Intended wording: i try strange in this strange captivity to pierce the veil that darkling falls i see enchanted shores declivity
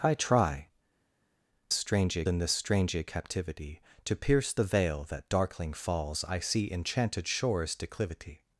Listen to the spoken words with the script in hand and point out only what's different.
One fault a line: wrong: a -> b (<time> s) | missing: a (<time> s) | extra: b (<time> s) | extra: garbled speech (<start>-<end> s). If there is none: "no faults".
no faults